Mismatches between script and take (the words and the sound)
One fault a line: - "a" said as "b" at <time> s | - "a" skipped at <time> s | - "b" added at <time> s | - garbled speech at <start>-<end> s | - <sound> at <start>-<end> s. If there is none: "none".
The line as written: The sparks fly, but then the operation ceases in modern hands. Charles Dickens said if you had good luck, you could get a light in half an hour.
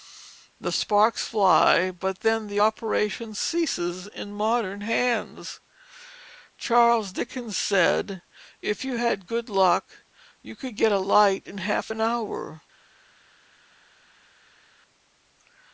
none